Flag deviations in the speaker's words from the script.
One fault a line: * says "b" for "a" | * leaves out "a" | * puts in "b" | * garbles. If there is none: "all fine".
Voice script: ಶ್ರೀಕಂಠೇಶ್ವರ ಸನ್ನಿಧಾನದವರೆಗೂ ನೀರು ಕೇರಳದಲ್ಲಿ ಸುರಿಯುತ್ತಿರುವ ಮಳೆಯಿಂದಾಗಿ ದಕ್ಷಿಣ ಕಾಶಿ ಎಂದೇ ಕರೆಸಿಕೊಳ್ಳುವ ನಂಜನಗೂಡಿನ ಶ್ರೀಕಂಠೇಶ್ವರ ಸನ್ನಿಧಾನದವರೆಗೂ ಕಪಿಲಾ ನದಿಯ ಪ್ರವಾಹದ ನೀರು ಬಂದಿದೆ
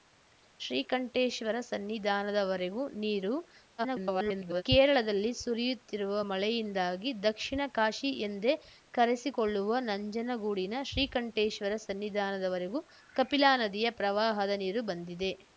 * garbles